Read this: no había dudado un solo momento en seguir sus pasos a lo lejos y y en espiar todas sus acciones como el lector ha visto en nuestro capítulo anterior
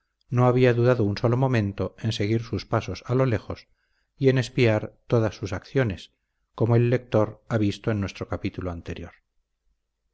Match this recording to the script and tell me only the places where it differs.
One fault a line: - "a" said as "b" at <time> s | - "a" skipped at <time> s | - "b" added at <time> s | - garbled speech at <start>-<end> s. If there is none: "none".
- "y" skipped at 4.3 s